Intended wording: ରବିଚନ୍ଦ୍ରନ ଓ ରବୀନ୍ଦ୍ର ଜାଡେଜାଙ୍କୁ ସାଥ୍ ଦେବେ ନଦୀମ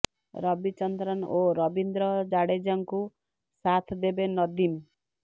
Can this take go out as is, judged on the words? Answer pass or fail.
pass